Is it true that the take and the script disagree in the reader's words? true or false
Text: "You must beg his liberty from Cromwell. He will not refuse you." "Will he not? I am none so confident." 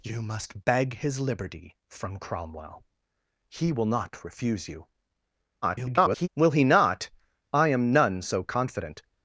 true